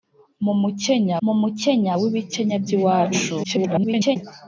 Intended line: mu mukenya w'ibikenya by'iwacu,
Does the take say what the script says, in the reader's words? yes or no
no